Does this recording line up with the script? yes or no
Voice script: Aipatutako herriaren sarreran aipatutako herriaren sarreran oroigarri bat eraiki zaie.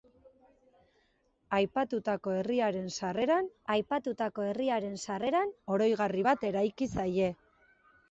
yes